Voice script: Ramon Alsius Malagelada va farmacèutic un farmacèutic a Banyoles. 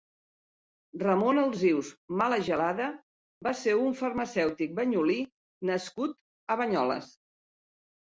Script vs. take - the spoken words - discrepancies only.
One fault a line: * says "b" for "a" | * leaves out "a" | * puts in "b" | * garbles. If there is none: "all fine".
* says "ser" for "farmacèutic"
* puts in "banyolí nascut"